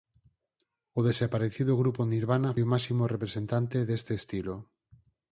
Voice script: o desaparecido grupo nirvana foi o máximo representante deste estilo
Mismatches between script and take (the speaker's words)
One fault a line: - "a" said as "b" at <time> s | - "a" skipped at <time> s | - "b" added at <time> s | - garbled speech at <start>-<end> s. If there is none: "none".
- "foi" skipped at 2.5 s